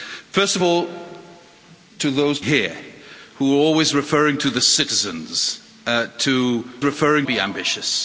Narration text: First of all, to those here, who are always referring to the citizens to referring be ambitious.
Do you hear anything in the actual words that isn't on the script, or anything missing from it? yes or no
no